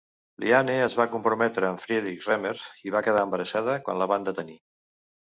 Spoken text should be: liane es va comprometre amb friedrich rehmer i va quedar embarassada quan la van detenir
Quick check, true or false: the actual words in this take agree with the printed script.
true